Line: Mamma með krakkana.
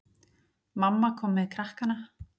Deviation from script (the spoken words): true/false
true